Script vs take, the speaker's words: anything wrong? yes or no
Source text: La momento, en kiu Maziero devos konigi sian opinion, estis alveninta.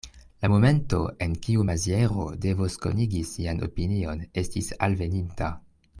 no